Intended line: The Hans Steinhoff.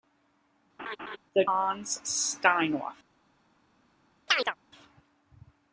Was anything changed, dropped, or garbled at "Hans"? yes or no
no